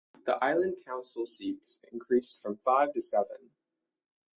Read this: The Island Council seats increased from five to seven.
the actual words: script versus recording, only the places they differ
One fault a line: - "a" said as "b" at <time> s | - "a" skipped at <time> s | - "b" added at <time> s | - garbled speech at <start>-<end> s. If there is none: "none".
none